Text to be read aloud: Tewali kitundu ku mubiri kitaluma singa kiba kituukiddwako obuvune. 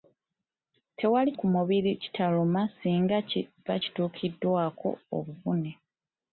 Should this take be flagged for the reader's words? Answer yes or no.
yes